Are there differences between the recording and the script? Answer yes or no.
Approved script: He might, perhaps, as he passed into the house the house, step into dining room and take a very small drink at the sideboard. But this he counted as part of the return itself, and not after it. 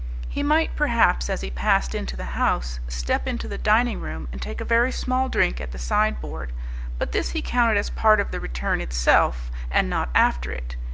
yes